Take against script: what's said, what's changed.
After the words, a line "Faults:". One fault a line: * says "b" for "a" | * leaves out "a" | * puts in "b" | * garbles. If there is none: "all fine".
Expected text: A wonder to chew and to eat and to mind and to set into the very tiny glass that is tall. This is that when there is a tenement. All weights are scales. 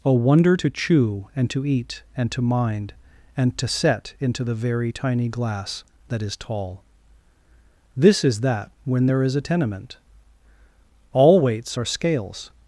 A wonder to chew and to eat and to mind and to set into the very tiny glass that is tall. This is that when there is a tenement. All weights are scales.
Faults:
all fine